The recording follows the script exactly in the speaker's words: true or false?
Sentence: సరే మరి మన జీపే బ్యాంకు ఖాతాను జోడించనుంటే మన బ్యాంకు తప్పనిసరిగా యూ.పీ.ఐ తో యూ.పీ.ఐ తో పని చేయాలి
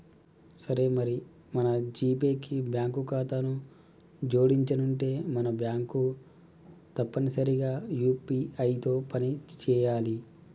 false